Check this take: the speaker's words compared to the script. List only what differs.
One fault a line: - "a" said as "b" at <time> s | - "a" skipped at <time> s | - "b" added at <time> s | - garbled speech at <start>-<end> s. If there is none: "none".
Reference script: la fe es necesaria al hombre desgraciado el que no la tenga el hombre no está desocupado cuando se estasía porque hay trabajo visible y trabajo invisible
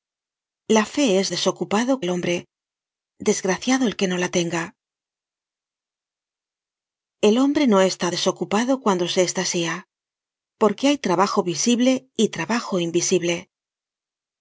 - "necesaria" said as "desocupado" at 1.3 s